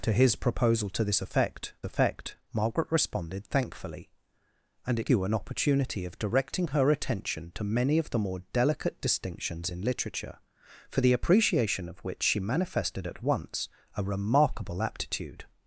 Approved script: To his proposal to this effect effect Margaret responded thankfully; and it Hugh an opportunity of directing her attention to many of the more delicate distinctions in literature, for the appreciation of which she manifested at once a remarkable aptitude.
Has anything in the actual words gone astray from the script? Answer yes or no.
no